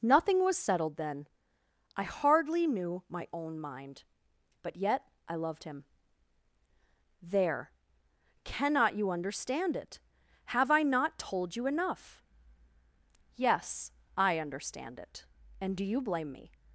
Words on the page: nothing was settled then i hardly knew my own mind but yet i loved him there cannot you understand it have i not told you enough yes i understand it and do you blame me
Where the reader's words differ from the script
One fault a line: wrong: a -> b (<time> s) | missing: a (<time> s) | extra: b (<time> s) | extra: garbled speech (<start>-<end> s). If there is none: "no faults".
no faults